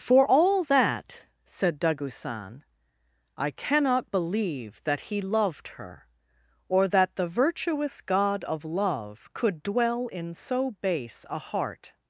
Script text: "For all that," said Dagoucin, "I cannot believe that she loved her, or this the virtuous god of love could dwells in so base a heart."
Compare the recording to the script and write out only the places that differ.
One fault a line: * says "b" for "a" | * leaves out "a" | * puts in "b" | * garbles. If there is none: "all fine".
* says "he" for "she"
* says "that" for "this"
* says "dwell" for "dwells"